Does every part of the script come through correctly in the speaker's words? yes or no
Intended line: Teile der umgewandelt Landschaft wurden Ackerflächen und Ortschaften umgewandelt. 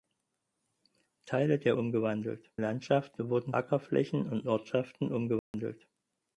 yes